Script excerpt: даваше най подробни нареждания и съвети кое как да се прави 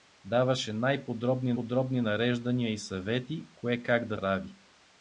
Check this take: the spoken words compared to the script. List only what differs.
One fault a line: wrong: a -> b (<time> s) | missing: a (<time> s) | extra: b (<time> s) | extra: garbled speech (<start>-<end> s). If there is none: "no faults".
extra: подробни (1.5 s)
missing: се (4.2 s)